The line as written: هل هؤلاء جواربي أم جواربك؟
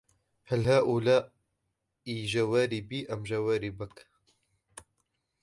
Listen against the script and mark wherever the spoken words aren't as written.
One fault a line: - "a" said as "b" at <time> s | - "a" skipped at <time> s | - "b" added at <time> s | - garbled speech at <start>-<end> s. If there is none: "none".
none